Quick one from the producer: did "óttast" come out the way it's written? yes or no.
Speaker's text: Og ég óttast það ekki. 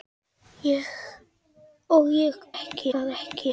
no